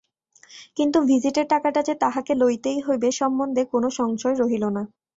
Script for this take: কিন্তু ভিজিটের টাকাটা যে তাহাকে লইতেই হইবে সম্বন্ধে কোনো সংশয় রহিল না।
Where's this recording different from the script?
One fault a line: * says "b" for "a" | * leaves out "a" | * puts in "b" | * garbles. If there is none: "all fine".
all fine